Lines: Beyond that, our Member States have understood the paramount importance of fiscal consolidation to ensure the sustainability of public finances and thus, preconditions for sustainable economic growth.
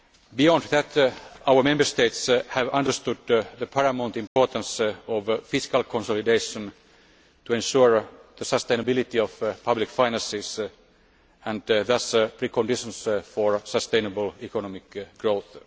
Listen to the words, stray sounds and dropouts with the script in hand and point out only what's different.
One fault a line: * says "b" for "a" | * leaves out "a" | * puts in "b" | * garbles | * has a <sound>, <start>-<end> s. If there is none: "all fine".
* has a dropout, 4.3-4.4 s